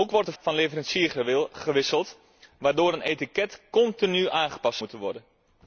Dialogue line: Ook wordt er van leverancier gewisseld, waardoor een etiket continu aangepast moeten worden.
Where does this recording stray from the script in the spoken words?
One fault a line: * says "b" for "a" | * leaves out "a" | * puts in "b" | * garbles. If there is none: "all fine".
all fine